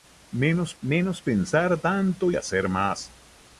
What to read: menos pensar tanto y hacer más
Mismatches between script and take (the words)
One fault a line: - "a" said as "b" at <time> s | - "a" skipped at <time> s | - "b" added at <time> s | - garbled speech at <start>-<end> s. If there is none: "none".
- "menos" added at 0.8 s
- "y" skipped at 2.3 s